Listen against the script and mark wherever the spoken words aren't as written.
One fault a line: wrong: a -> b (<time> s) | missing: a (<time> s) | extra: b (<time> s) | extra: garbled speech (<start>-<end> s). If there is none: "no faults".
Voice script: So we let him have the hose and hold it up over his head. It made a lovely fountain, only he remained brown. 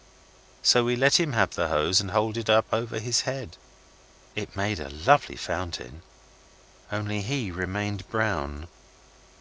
no faults